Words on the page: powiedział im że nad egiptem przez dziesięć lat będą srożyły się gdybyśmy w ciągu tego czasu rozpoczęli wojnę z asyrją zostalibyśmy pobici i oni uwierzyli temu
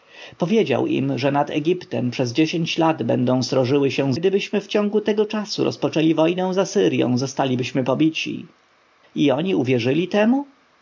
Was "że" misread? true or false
false